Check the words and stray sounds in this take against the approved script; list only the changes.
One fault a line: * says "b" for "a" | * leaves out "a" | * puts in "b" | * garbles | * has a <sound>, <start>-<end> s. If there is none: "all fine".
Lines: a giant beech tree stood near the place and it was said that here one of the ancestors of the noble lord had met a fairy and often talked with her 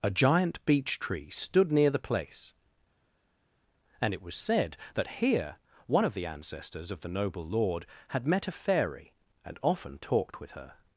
all fine